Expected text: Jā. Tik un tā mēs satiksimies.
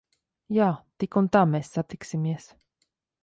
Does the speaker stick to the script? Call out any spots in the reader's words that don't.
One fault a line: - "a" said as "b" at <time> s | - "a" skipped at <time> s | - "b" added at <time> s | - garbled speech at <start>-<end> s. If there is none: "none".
none